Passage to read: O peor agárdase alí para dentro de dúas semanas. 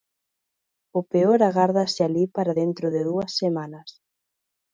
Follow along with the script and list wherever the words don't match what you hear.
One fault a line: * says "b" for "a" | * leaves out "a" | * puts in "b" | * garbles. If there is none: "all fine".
all fine